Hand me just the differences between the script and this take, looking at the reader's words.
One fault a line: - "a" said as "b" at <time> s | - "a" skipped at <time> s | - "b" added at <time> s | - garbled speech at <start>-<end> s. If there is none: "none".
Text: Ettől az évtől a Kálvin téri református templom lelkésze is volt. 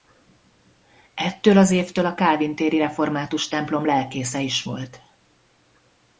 none